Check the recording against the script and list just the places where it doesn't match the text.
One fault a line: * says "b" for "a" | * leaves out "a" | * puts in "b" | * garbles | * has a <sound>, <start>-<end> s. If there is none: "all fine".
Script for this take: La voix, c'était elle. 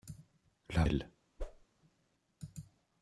* leaves out "voix c'était"
* has a whoosh, 1.4-1.7 s